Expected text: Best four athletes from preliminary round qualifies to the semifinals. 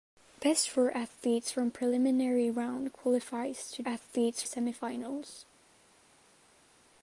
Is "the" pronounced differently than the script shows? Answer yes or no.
yes